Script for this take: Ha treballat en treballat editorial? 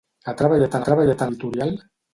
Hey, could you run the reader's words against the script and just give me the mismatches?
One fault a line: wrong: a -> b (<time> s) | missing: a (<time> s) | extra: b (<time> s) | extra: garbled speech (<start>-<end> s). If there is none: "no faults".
no faults